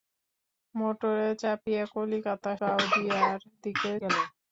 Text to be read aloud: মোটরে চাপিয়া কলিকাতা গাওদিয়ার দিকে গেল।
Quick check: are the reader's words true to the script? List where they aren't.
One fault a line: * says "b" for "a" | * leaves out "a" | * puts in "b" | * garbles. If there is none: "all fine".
all fine